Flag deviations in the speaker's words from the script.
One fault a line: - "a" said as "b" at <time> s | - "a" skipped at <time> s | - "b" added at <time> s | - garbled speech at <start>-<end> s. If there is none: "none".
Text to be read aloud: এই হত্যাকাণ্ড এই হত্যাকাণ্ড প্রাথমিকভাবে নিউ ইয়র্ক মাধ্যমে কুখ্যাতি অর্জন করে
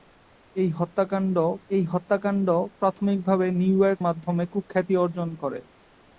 none